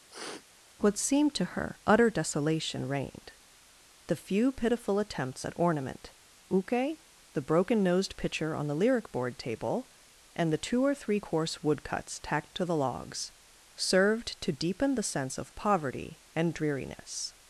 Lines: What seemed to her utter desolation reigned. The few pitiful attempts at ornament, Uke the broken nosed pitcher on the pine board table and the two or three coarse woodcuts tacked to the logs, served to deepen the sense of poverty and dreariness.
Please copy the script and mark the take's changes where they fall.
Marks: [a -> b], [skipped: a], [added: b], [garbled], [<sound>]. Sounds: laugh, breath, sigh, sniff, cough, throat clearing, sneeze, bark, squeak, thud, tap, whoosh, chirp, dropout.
[sniff] What seemed to her utter desolation reigned. The few pitiful attempts at ornament, Uke the broken nosed pitcher on the [pine -> lyric] board table and the two or three coarse woodcuts tacked to the logs, served to deepen the sense of poverty and dreariness.